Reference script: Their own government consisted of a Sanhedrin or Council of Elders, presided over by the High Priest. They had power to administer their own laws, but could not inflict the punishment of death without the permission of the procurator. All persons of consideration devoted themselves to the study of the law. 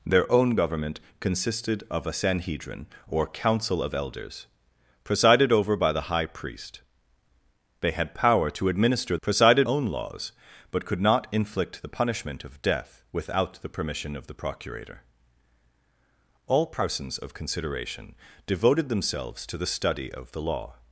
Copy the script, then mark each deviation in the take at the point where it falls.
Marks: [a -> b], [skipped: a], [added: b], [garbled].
Their own government consisted of a Sanhedrin or Council of Elders, presided over by the High Priest. They had power to administer [their -> presided] own laws, but could not inflict the punishment of death without the permission of the procurator. All persons of consideration devoted themselves to the study of the law.